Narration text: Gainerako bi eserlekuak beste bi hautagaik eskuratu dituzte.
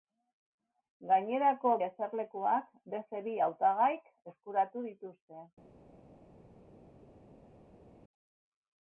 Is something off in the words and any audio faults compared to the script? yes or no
yes